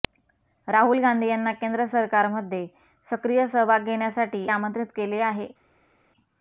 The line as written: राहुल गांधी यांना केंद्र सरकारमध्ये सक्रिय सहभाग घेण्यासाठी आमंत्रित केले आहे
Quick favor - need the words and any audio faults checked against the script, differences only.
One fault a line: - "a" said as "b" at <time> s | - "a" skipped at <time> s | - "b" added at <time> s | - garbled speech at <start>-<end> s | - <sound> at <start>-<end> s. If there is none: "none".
none